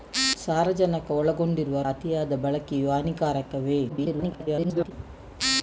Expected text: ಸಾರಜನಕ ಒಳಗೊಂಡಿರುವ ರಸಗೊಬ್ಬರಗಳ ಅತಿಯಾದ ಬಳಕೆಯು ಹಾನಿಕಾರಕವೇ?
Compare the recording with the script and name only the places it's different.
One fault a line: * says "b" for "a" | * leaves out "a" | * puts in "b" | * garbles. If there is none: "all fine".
* leaves out "ರಸಗೊಬ್ಬರಗಳ"
* garbles